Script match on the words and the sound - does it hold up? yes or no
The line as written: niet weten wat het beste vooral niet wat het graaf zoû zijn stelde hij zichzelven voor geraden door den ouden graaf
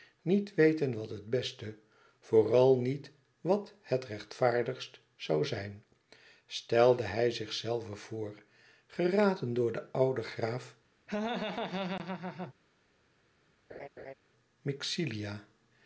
no